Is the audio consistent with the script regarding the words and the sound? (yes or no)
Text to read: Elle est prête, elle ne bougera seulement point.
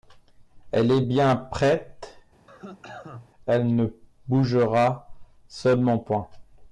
no